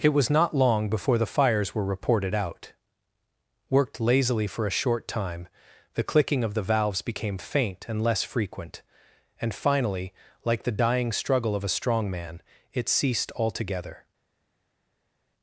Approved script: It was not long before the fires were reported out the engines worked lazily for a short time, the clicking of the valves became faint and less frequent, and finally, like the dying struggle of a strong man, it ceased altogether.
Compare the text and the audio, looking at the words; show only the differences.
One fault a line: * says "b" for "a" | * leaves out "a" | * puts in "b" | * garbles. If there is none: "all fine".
* leaves out "the engines"